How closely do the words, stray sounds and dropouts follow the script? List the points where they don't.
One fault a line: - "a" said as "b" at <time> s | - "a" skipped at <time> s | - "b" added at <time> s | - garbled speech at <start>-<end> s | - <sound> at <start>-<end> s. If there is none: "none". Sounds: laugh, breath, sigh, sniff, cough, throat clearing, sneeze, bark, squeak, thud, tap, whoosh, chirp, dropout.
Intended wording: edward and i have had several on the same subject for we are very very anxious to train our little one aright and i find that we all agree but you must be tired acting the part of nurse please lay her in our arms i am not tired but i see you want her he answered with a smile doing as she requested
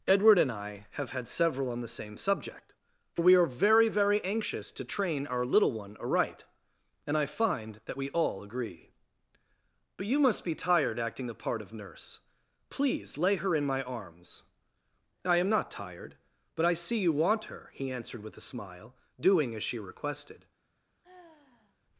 - "our" said as "my" at 13.6 s
- sigh at 21.0-21.8 s